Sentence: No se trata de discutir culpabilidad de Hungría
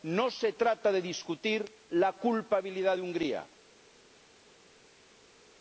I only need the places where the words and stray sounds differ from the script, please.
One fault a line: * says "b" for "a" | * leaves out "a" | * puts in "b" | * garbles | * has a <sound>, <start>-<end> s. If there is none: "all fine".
* puts in "la"